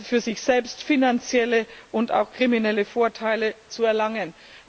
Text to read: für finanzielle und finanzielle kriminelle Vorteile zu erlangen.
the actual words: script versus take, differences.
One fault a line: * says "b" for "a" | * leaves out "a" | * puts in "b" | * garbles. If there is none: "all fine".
* puts in "sich selbst"
* says "auch" for "finanzielle"